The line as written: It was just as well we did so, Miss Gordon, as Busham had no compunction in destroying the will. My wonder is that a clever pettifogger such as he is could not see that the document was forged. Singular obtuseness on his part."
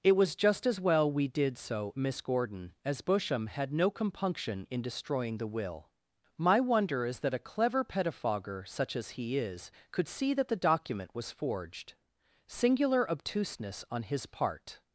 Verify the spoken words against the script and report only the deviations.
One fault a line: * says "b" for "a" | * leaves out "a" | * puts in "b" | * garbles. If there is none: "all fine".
* leaves out "not"